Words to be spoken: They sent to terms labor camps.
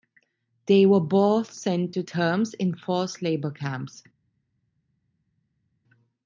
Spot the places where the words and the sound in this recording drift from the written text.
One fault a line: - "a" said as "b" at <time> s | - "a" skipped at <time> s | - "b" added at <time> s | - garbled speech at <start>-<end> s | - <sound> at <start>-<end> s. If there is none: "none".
- "were both" added at 0.9 s
- "in forced" added at 2.5 s